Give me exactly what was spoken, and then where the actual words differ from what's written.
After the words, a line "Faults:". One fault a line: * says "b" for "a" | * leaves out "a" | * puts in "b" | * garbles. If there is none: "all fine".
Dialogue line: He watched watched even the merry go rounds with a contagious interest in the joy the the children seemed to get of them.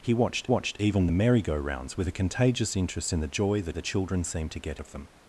He watched watched even the merry go rounds with a contagious interest in the joy the the children seemed to get of them.
Faults:
all fine